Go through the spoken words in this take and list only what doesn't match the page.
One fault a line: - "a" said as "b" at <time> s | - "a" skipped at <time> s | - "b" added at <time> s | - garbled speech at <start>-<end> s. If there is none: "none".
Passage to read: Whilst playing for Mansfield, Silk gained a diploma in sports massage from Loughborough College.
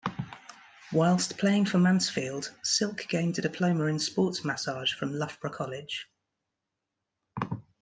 none